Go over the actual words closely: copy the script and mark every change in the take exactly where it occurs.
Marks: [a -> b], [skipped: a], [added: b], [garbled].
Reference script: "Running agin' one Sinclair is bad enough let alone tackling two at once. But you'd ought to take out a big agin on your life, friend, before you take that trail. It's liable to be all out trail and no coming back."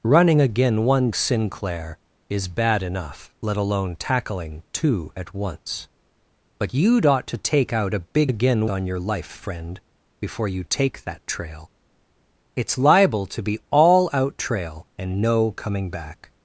"Running agin' one Sinclair is bad enough let alone tackling two at once. But you'd ought to take out a big agin on your life, friend, before you take that trail. It's liable to be all out trail and no coming back."